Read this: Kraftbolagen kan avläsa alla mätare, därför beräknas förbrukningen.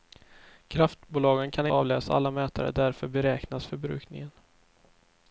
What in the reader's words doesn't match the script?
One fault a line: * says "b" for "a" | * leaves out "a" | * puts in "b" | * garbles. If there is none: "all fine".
all fine